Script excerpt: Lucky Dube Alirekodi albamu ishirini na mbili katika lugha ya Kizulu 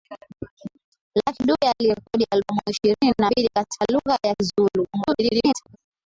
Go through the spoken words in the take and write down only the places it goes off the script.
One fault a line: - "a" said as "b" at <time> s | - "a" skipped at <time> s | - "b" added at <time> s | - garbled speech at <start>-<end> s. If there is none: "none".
- garbled speech at 4.9-5.8 s